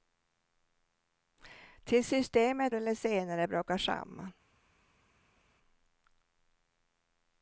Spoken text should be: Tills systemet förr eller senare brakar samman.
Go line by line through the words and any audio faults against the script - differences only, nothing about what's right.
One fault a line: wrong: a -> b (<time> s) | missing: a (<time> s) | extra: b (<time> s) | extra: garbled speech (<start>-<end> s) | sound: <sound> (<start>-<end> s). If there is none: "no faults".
missing: förr (2.8 s)